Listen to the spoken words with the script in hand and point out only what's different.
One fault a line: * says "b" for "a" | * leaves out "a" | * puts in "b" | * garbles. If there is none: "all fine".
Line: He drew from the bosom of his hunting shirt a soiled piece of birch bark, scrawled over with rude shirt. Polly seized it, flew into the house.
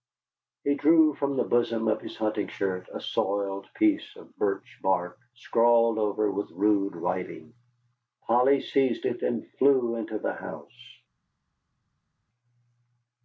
* says "writing" for "shirt"
* puts in "and"